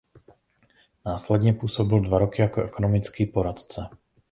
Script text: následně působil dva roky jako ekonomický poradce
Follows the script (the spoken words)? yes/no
yes